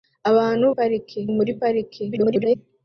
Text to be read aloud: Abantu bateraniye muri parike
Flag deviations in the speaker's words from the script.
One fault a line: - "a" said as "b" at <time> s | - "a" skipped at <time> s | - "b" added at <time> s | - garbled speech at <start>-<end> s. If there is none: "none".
- "bateraniye" said as "parike" at 0.7 s
- garbled speech at 2.1-2.6 s